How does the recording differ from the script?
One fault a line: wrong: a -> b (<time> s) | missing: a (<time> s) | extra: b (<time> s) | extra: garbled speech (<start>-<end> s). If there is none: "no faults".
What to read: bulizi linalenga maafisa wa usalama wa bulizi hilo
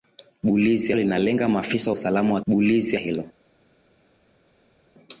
no faults